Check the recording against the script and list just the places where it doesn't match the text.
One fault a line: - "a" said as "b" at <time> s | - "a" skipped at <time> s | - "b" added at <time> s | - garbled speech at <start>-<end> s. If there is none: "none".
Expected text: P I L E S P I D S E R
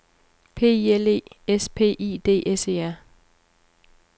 none